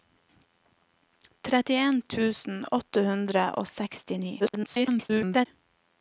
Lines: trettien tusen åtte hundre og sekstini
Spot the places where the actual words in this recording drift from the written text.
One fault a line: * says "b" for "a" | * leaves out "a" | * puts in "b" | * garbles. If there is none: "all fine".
* garbles